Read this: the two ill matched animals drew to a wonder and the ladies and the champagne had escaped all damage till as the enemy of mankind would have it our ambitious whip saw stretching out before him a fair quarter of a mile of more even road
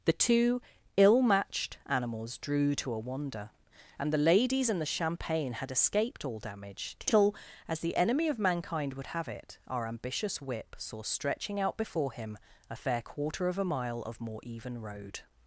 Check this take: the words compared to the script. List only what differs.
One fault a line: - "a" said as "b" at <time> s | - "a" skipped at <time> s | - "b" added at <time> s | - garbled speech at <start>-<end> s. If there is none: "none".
none